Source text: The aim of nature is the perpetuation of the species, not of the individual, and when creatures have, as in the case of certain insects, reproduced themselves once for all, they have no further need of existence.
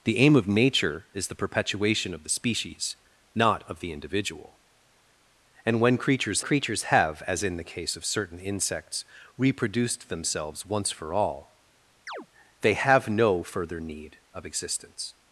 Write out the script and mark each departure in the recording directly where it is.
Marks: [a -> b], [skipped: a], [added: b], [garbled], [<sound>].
The aim of nature is the perpetuation of the species, not of the individual, and when creatures [added: creatures] have, as in the case of certain insects, reproduced themselves once for all, [chirp] they have no further need of existence.